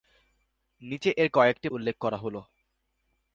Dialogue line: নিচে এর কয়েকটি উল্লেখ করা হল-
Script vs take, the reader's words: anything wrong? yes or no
no